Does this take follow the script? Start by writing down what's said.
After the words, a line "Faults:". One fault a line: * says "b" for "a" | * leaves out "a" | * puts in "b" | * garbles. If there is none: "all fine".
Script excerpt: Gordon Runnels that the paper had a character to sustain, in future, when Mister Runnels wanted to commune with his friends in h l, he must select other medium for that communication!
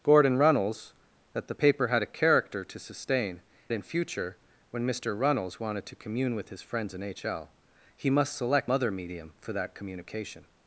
Gordon Runnels that the paper had a character to sustain, in future, when Mister Runnels wanted to commune with his friends in h l, he must select other medium for that communication!
Faults:
all fine